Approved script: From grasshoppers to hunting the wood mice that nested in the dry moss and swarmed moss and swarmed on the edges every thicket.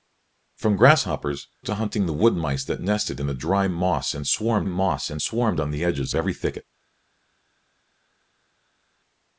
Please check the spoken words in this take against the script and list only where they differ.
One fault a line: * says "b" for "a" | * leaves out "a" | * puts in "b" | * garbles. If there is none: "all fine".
all fine